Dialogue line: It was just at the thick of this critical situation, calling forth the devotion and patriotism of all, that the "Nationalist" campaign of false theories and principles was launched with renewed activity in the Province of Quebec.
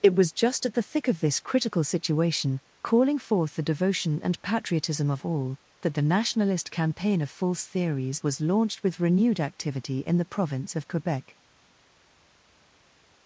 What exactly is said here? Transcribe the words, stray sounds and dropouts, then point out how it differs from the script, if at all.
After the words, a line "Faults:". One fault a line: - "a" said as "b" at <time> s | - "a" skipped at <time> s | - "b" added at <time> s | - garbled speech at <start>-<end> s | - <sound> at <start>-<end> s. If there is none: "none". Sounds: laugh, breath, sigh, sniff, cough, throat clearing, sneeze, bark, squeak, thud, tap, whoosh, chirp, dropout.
It was just at the thick of this critical situation, calling forth the devotion and patriotism of all, that the "Nationalist" campaign of false theories was launched with renewed activity in the Province of Quebec.
Faults:
- "and principles" skipped at 8.2 s